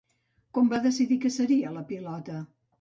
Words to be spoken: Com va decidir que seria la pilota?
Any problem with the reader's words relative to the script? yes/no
no